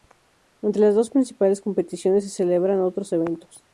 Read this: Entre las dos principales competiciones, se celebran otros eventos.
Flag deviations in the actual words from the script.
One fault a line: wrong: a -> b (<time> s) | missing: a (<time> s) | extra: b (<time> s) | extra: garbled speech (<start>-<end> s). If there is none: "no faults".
no faults